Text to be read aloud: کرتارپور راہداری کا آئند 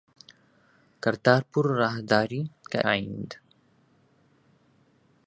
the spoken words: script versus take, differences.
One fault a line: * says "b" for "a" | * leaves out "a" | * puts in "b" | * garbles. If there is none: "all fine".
all fine